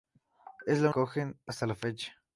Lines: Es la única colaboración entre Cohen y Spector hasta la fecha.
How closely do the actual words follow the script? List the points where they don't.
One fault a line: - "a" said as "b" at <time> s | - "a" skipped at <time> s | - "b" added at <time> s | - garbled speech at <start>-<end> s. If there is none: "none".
- "única colaboración entre" skipped at 0.9 s
- "Spector" skipped at 1.5 s